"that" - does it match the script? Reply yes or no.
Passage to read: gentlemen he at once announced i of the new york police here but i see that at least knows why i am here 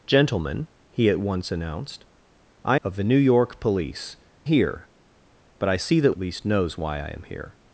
yes